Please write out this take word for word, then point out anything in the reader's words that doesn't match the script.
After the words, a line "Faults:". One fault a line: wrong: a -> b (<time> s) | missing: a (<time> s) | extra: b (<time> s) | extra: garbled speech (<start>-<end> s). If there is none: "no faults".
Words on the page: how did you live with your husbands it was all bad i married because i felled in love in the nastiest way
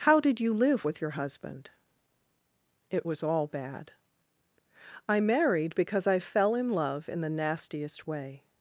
how did you live with your husband it was all bad i married because i fell in love in the nastiest way
Faults:
wrong: husbands -> husband (1.1 s)
wrong: felled -> fell (6.2 s)